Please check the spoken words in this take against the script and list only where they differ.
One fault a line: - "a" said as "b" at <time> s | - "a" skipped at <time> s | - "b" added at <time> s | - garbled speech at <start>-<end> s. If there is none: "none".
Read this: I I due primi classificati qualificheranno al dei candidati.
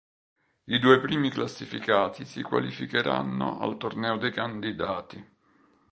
- "I" skipped at 0.8 s
- "si" added at 2.2 s
- "torneo" added at 3.8 s